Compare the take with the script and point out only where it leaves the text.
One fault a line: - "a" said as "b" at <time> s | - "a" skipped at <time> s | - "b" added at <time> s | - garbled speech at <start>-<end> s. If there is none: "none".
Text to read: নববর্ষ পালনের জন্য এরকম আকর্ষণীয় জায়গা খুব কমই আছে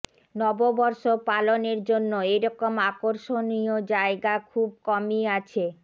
none